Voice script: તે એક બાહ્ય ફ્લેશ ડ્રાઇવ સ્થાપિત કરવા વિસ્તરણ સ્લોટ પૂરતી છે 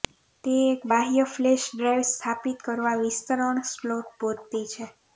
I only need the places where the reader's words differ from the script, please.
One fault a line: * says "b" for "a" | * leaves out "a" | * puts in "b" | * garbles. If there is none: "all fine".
all fine